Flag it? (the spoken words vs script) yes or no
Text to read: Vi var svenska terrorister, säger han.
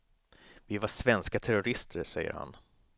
no